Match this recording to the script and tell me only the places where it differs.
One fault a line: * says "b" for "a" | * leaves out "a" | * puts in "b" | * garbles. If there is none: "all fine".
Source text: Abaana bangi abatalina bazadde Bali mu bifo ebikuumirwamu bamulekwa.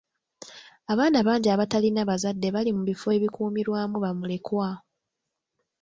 all fine